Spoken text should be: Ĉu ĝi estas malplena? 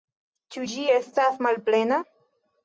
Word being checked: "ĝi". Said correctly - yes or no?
yes